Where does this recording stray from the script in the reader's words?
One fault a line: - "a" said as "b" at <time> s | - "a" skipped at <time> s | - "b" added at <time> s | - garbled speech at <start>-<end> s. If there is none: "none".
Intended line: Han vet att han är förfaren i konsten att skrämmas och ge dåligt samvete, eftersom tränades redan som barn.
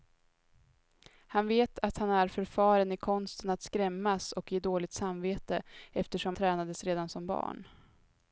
none